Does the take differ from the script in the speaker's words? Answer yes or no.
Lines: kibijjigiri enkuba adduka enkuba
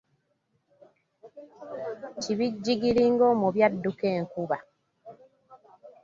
yes